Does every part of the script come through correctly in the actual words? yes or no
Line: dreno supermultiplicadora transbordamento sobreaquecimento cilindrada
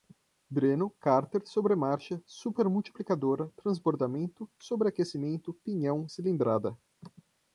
no